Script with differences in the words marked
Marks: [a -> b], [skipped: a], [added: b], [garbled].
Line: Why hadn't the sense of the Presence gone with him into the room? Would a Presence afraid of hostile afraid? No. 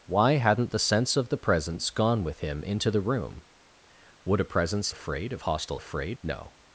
Why hadn't the sense of the Presence gone with him into the room? Would a Presence afraid of hostile afraid? No.